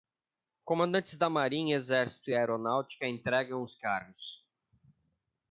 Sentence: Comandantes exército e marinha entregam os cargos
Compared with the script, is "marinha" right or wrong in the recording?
wrong